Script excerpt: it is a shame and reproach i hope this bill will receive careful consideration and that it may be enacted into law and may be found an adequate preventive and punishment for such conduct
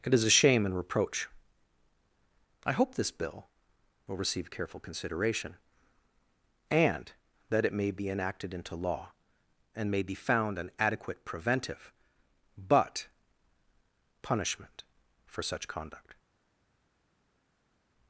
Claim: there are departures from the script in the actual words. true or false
true